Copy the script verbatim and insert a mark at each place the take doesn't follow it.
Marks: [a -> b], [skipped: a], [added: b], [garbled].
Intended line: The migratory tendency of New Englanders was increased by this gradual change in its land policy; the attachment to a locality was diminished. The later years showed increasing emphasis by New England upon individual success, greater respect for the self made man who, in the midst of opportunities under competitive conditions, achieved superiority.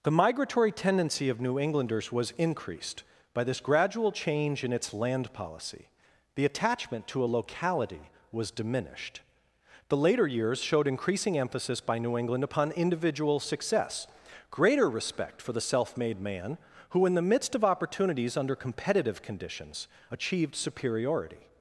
The migratory tendency of New Englanders was increased by this gradual change in its land policy; the attachment to a locality was diminished. The later years showed increasing emphasis by New England upon individual success, greater respect for the self made man who, in the midst of opportunities under competitive conditions, achieved superiority.